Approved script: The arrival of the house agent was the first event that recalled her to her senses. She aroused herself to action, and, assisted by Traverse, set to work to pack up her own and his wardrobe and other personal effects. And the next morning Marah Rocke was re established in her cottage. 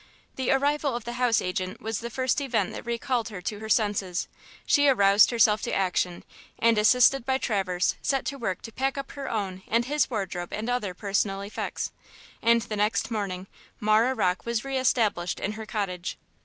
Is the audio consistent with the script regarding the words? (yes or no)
yes